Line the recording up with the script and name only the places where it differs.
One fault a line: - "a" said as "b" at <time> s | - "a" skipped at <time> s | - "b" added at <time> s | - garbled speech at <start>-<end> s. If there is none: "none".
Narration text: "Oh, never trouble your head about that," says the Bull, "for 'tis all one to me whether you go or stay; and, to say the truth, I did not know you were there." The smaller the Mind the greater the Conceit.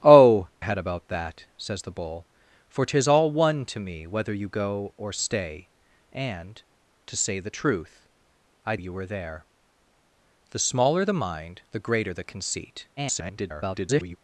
- "never trouble your" skipped at 0.5 s
- "did not know" skipped at 8.8 s
- garbled speech at 13.0-14.2 s